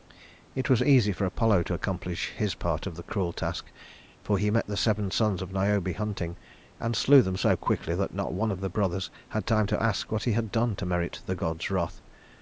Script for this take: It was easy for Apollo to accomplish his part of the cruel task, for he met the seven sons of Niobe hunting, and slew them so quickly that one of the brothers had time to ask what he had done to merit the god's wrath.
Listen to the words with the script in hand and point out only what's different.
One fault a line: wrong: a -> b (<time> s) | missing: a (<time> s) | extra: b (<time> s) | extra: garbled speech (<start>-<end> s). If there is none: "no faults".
extra: not (8.1 s)